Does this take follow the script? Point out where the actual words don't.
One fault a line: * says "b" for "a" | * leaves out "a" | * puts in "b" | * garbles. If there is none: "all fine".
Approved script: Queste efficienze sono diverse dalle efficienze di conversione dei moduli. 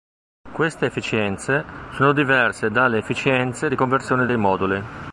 all fine